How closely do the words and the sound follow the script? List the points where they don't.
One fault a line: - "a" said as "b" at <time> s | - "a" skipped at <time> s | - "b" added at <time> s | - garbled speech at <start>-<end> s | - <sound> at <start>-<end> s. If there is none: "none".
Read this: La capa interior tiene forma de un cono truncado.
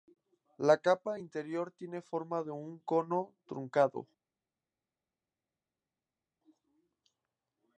none